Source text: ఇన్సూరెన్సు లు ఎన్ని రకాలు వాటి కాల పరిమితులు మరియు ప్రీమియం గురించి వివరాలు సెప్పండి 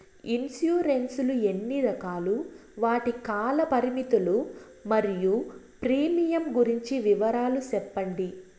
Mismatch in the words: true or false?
false